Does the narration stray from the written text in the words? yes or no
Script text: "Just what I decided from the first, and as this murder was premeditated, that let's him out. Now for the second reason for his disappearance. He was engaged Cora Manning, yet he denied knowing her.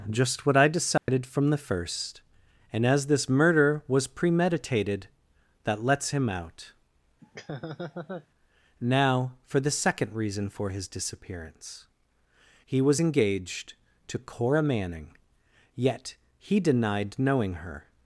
yes